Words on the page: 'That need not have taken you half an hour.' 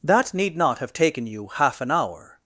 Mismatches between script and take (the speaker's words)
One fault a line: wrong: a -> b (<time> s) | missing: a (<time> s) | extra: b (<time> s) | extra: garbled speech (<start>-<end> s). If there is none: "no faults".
no faults